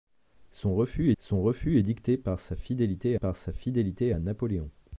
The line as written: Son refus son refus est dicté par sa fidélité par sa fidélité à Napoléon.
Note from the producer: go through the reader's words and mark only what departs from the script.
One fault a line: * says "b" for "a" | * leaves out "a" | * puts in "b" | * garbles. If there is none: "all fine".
all fine